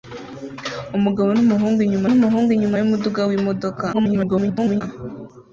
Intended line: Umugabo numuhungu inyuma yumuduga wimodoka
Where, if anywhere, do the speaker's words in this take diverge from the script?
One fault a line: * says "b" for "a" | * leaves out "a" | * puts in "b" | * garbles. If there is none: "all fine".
* puts in "numuhungu inyuma"
* garbles